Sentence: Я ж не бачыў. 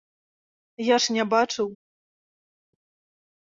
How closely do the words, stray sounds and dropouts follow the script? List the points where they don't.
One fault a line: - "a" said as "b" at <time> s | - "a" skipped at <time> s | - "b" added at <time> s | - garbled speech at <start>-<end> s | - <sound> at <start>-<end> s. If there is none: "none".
none